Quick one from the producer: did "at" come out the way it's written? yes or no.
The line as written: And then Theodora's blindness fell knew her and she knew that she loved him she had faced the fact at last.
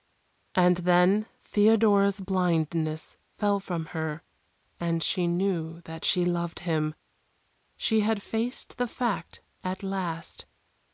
yes